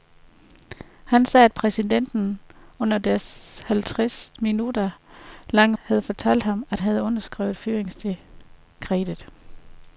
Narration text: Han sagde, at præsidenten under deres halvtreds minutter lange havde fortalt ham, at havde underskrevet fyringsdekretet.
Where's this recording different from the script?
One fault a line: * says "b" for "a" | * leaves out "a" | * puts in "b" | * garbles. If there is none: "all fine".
all fine